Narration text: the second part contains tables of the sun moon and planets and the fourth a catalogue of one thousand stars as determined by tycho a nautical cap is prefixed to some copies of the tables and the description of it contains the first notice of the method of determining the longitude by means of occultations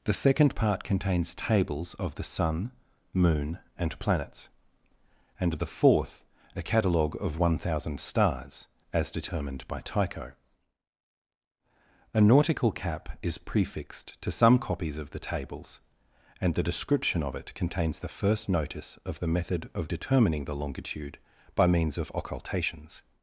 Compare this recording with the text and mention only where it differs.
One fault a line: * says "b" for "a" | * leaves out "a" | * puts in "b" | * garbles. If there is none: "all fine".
all fine